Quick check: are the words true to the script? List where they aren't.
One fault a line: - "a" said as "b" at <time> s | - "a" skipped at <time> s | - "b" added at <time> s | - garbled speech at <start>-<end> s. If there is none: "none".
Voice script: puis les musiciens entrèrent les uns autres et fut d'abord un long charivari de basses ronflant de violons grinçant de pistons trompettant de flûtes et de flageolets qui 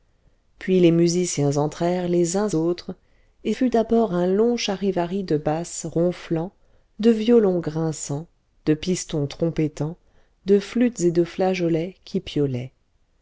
none